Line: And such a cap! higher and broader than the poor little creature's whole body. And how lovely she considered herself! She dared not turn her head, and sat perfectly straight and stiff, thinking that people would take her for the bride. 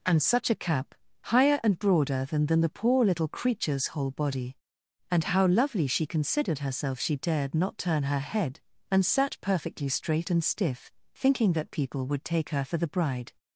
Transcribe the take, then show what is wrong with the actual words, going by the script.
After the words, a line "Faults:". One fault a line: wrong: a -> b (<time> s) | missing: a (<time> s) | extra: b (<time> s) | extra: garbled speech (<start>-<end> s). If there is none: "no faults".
And such a cap! higher and broader than than the poor little creature's whole body. And how lovely she considered herself! She dared not turn her head, and sat perfectly straight and stiff, thinking that people would take her for the bride.
Faults:
extra: than (2.5 s)